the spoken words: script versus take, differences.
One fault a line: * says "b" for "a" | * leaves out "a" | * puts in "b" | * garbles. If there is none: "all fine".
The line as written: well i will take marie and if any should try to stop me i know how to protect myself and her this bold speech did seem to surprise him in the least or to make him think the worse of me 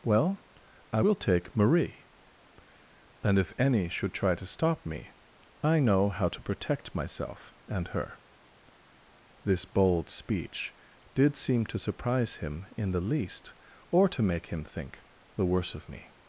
all fine